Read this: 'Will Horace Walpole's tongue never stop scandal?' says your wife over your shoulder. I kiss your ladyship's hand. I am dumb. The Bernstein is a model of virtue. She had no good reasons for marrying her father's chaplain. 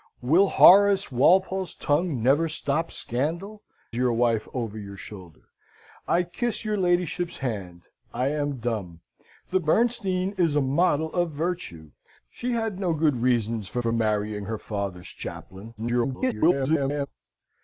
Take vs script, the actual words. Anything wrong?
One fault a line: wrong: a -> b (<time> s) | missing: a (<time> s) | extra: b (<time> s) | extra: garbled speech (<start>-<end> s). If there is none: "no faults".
missing: says (3.6 s)
extra: for (13.8 s)
extra: garbled speech (15.8-17.1 s)